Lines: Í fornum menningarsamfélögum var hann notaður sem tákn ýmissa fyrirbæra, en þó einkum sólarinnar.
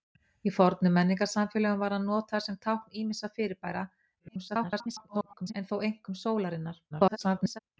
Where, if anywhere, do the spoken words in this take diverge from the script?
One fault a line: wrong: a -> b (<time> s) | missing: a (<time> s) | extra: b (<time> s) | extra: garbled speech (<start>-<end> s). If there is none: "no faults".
extra: garbled speech (4.2-5.5 s)
extra: garbled speech (6.9-7.6 s)